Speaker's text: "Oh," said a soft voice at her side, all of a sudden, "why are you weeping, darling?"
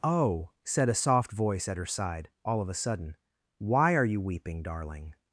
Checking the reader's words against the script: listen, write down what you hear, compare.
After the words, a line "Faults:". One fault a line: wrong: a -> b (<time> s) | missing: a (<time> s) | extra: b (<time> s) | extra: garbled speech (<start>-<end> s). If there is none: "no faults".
"Oh," said a soft voice at her side, all of a sudden, "why are you weeping, darling?"
Faults:
no faults